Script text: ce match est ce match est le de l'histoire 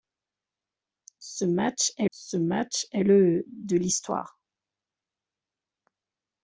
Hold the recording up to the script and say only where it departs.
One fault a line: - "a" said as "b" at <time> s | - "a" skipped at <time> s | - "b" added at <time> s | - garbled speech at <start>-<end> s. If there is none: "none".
none